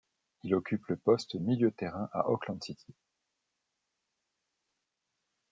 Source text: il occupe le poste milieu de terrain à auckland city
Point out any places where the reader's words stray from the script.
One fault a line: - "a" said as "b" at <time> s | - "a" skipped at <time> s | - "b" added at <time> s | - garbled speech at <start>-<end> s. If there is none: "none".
none